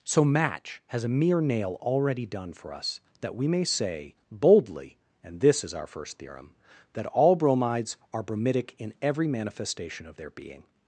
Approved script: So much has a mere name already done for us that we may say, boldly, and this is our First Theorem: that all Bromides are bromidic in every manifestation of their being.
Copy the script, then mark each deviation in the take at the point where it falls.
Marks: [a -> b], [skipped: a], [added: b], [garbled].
So [much -> match] has a mere [name -> nail] already done for us that we may say, boldly, and this is our First Theorem: that all Bromides are bromidic in every manifestation of their being.